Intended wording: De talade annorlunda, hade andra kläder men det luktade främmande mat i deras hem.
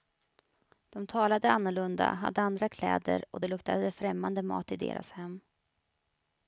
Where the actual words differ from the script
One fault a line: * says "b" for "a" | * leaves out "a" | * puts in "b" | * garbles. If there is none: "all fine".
* says "och" for "men"